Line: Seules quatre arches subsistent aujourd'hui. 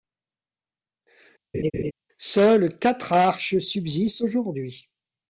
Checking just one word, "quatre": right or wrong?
right